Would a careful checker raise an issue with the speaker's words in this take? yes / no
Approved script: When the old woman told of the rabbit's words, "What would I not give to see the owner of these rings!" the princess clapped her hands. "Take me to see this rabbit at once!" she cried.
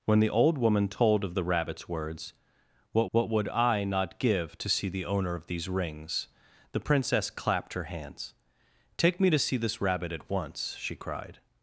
yes